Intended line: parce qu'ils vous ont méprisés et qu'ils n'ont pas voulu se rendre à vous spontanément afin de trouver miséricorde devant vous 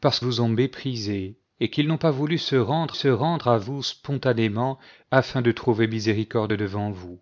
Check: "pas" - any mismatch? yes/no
no